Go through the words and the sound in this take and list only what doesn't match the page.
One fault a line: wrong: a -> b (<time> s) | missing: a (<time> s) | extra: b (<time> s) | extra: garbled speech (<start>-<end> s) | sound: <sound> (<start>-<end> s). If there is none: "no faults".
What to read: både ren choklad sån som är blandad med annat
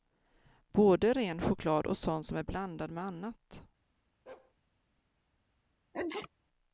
extra: och (1.9 s)
sound: bark (4.3-4.5 s)
sound: sneeze (5.9-6.3 s)